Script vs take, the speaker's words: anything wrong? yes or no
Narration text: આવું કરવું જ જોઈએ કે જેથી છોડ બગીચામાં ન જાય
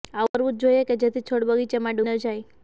no